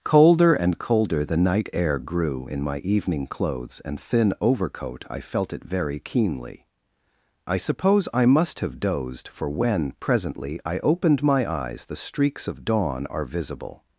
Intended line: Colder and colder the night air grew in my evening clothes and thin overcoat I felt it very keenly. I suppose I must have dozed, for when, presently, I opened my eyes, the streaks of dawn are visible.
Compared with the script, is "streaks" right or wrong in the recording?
right